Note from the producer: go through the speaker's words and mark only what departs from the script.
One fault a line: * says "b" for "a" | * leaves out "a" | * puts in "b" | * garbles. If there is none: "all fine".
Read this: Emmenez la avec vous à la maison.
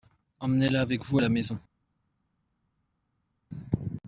all fine